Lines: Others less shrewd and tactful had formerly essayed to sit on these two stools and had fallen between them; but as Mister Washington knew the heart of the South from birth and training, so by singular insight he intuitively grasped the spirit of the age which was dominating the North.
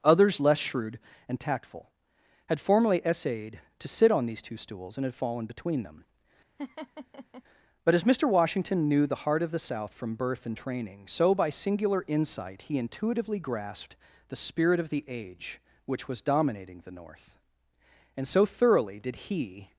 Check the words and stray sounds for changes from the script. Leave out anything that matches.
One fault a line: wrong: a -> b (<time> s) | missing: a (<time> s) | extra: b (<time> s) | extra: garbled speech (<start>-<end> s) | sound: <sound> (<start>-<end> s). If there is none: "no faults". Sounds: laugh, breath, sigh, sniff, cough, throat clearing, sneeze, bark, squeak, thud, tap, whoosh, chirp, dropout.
sound: laugh (6.6-7.4 s)
extra: And so thoroughly did he (18.2 s)